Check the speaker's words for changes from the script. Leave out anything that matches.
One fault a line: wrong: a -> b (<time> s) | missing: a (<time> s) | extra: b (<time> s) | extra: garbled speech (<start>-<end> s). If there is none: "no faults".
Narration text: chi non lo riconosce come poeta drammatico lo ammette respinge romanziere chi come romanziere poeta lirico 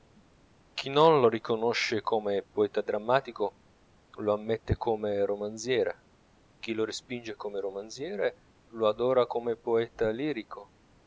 wrong: respinge -> come (4.8 s)
extra: lo respinge (6.7 s)
extra: lo adora come (8.7 s)